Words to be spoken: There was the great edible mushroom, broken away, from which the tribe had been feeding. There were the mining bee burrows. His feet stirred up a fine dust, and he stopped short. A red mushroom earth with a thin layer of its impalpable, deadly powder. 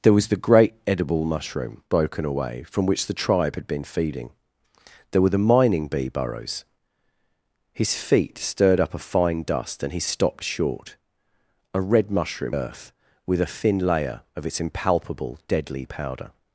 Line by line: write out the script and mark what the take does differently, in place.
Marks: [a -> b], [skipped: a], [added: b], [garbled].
There was the great edible mushroom, broken away, from which the tribe had been feeding. There were the mining bee burrows. His feet stirred up a fine dust, and he stopped short. A red mushroom earth with a thin layer of its impalpable, deadly powder.